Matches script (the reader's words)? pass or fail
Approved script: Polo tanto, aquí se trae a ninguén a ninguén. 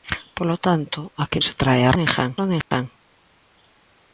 pass